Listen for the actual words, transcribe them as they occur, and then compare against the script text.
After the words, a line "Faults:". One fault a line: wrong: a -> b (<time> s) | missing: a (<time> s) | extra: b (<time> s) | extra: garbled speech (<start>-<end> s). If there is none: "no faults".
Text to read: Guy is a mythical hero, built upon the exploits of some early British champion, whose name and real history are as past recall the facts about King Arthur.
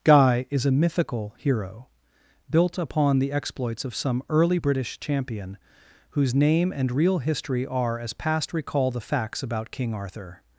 Guy is a mythical hero, built upon the exploits of some early British champion, whose name and real history are as past recall the facts about King Arthur.
Faults:
no faults